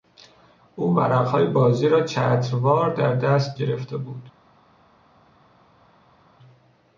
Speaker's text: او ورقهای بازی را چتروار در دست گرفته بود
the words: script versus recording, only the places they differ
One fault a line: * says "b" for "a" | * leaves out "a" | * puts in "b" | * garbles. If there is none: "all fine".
all fine